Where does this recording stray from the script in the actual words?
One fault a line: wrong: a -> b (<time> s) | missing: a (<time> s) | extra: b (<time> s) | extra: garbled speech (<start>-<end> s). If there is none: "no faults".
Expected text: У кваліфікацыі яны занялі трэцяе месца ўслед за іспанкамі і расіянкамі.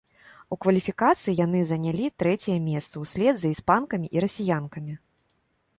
no faults